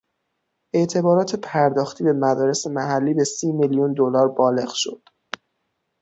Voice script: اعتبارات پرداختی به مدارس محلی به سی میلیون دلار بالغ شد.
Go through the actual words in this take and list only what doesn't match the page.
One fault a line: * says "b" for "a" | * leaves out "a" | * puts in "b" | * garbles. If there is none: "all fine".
all fine